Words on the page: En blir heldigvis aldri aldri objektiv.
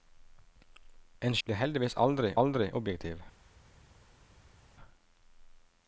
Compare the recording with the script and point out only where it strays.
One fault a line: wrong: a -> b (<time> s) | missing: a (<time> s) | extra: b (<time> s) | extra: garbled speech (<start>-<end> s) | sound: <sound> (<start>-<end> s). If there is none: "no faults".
no faults